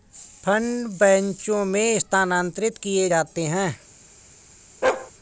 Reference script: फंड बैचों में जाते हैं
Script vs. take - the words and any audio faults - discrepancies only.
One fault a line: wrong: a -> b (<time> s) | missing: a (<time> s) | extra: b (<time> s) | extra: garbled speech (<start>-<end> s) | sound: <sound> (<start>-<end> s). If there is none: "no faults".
extra: स्थानांतरित किए (2.0 s)
sound: bark (4.8-5.1 s)